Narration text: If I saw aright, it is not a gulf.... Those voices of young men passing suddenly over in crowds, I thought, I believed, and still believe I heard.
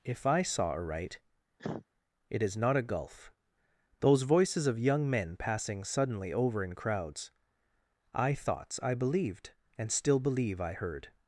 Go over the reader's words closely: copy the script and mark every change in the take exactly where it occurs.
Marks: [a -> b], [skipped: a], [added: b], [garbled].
If I saw aright, it is not a gulf.... Those voices of young men passing suddenly over in crowds, I [thought, -> thoughts] I believed, and still believe I heard.